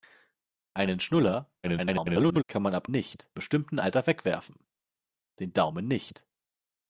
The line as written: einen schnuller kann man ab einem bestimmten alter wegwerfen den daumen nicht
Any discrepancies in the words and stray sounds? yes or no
yes